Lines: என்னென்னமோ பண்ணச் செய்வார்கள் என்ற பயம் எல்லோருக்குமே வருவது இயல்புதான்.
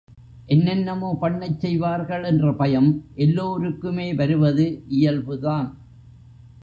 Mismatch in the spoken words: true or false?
false